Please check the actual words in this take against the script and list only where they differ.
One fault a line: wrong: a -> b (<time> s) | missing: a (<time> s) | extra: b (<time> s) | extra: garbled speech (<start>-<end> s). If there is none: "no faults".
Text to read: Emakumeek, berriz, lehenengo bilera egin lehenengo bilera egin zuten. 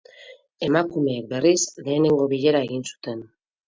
missing: lehenengo bilera egin (2.9 s)